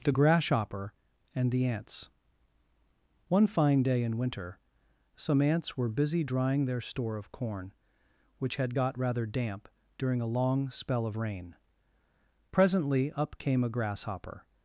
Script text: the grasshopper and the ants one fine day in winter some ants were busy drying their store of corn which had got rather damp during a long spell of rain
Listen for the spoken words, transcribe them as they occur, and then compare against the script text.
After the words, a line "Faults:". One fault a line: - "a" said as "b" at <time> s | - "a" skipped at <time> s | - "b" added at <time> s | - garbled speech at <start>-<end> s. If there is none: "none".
the grasshopper and the ants one fine day in winter some ants were busy drying their store of corn which had got rather damp during a long spell of rain presently up came a grasshopper
Faults:
- "presently up came a grasshopper" added at 12.5 s